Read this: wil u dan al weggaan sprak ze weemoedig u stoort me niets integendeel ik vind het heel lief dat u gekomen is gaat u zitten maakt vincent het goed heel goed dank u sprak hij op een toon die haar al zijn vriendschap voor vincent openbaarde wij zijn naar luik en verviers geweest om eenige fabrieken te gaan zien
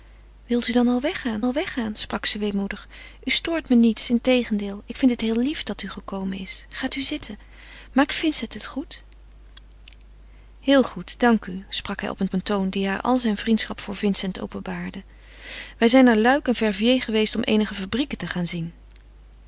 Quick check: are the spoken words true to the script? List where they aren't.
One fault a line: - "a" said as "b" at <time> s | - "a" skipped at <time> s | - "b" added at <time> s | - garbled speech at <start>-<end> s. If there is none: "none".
- "al weggaan" added at 1.4 s
- "een" added at 12.3 s